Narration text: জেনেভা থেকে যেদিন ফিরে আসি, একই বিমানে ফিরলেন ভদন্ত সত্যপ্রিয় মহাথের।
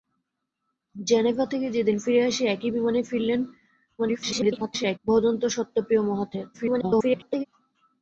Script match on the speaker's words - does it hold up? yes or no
no